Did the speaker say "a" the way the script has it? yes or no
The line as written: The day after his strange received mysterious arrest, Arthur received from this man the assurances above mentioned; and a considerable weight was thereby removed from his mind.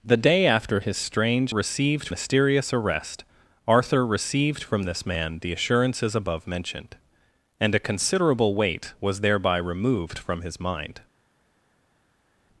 yes